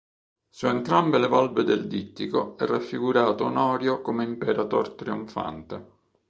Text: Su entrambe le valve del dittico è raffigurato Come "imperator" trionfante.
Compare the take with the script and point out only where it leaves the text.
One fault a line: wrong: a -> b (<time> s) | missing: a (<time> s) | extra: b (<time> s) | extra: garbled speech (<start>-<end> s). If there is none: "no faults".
extra: Onorio (3.5 s)